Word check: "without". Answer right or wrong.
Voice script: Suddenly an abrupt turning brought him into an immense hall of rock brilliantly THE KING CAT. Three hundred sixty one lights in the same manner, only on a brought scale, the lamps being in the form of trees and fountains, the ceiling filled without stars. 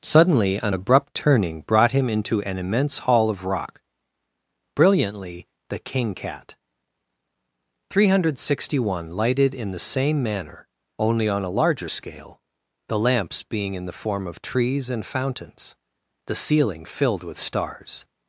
wrong